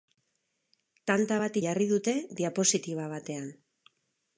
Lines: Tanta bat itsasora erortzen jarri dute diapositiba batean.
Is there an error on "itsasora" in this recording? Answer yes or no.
yes